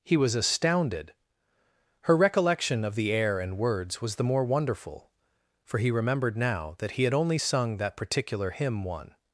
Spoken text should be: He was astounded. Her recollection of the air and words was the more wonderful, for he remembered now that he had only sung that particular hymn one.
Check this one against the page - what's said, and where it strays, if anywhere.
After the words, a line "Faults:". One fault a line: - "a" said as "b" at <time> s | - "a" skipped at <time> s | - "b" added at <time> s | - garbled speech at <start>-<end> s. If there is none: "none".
He was astounded. Her recollection of the air and words was the more wonderful, for he remembered now that he had only sung that particular hymn one.
Faults:
none